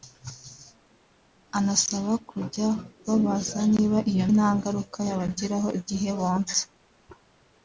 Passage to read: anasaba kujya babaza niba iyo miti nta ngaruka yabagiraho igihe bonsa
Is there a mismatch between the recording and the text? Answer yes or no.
yes